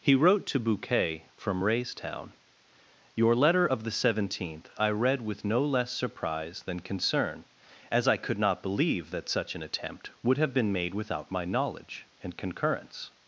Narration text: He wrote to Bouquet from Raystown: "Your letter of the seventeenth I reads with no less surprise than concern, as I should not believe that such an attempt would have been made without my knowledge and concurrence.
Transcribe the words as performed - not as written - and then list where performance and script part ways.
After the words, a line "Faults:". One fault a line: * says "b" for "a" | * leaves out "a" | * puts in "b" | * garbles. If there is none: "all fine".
He wrote to Bouquet from Raystown: "Your letter of the seventeenth I read with no less surprise than concern, as I could not believe that such an attempt would have been made without my knowledge and concurrence.
Faults:
* says "read" for "reads"
* says "could" for "should"